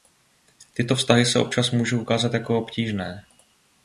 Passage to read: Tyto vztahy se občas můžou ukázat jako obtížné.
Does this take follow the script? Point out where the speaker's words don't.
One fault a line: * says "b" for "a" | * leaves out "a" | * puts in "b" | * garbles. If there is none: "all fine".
all fine